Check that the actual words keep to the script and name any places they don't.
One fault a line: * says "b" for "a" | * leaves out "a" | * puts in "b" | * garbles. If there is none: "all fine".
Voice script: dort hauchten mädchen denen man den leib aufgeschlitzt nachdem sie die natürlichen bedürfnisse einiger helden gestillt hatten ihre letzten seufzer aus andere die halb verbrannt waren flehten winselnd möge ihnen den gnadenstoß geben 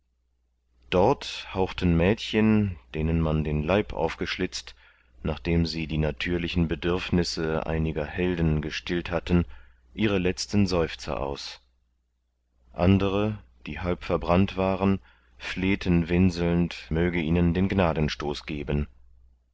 all fine